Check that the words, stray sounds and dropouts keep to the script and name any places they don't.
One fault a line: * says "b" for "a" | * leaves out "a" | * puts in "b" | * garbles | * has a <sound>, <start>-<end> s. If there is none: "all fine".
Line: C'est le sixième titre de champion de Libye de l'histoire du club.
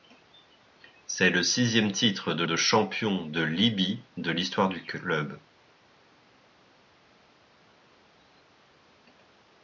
* puts in "de"